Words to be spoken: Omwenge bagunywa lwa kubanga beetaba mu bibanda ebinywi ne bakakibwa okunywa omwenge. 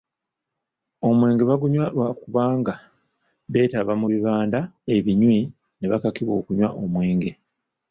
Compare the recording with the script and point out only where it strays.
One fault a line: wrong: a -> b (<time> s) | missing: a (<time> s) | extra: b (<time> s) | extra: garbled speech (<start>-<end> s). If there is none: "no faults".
no faults